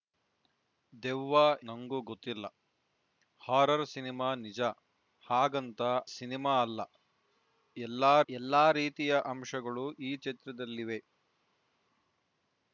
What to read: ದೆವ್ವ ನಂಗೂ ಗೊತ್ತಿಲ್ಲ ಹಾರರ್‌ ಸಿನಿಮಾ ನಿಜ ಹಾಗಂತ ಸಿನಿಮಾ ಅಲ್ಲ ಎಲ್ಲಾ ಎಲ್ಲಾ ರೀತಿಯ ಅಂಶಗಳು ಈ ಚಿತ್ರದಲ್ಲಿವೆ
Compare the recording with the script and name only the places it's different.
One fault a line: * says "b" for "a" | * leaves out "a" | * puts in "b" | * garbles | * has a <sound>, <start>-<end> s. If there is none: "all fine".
all fine